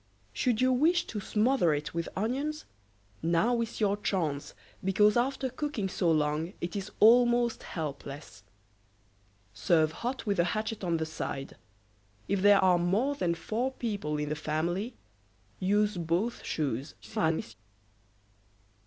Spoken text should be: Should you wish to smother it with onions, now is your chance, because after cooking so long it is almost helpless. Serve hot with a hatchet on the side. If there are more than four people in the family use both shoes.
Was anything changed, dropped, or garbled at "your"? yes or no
no